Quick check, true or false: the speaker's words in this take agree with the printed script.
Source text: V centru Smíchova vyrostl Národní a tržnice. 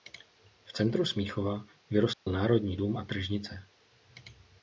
false